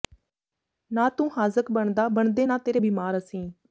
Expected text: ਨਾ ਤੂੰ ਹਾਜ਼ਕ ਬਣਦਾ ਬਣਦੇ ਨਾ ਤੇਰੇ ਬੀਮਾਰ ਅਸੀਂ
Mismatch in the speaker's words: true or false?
false